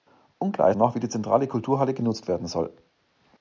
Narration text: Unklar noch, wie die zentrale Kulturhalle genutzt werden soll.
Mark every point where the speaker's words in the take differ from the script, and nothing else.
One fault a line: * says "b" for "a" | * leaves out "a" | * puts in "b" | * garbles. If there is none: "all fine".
all fine